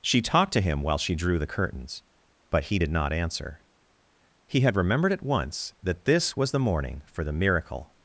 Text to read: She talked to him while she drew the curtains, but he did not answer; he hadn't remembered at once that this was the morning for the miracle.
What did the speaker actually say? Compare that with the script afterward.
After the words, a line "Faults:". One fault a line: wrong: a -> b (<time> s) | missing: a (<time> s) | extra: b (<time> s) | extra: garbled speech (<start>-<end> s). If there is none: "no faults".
She talked to him while she drew the curtains, but he did not answer; he had remembered at once that this was the morning for the miracle.
Faults:
wrong: hadn't -> had (4.6 s)